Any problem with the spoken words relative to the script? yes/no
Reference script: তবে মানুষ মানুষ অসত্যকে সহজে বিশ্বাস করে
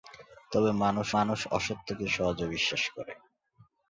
no